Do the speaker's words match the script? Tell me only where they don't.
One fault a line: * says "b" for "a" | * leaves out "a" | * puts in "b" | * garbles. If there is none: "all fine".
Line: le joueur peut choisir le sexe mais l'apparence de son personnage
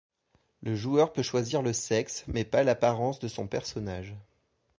* puts in "pas"